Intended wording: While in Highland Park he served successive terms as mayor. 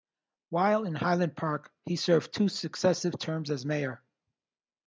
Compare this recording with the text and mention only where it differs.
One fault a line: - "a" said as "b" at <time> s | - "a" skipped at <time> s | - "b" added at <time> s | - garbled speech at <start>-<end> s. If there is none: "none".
- "two" added at 2.3 s